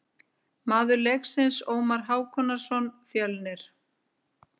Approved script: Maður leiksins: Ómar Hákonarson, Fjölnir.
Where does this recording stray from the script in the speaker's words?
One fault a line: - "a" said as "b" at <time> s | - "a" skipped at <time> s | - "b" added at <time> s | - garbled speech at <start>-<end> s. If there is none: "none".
none